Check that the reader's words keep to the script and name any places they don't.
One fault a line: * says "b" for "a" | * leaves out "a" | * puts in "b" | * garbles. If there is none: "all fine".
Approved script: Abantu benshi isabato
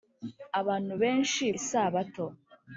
all fine